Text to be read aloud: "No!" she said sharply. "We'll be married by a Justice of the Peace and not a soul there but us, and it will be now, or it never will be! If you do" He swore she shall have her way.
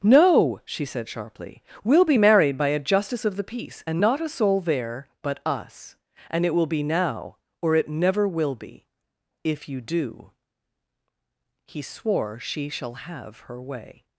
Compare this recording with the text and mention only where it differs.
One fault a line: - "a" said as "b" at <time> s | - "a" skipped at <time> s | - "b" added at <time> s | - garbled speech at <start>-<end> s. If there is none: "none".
none